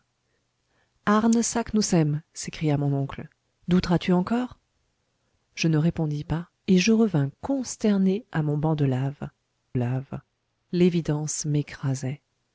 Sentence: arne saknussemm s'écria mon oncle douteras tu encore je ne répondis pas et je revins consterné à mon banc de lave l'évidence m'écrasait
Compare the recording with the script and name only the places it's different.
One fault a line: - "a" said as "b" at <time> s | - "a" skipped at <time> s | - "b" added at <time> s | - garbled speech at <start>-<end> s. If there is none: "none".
- "lave" added at 9.7 s